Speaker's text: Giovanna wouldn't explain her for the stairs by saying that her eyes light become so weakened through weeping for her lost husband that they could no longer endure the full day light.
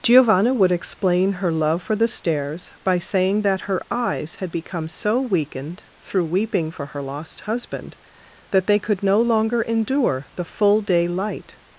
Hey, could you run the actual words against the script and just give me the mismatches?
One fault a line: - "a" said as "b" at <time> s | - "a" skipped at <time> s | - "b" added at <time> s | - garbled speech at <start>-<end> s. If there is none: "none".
- "wouldn't" said as "would" at 0.5 s
- "love" added at 1.5 s
- "light" said as "had" at 4.3 s